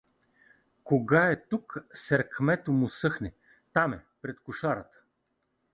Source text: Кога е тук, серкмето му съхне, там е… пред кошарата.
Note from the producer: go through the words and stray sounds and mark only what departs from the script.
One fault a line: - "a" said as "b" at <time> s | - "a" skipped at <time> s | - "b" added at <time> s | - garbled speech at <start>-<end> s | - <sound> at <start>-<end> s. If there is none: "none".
none